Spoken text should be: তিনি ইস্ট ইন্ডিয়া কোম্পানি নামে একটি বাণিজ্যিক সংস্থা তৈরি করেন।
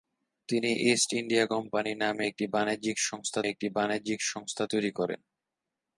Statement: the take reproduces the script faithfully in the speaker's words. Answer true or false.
false